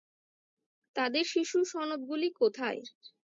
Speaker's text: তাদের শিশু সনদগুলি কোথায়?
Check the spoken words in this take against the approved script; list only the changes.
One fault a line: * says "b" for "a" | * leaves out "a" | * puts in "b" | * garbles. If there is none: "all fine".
all fine